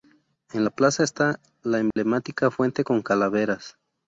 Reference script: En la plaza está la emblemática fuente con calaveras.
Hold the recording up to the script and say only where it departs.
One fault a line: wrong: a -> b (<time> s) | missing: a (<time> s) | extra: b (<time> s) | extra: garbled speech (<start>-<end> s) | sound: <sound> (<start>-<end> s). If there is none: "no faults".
sound: dropout (1.9-2.0 s)